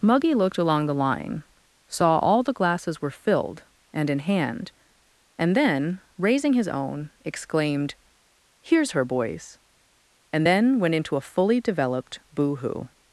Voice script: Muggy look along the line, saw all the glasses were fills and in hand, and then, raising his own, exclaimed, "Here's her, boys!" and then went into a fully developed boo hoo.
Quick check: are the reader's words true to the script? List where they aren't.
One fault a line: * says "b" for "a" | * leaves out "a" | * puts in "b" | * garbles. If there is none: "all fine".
* says "looked" for "look"
* says "filled" for "fills"